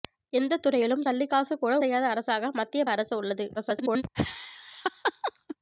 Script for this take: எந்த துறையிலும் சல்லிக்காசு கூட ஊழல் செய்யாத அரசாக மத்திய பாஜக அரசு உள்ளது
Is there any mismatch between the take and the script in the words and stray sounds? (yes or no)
yes